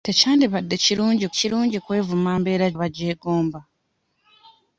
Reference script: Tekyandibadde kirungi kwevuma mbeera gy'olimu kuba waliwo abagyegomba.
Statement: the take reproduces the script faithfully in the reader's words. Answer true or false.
false